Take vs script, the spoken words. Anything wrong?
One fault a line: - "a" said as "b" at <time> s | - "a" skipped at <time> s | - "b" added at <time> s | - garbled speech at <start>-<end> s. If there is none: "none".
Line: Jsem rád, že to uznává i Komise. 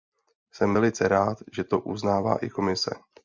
- "velice" added at 0.7 s